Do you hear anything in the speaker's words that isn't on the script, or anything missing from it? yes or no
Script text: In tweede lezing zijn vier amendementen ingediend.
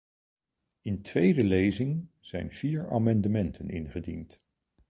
no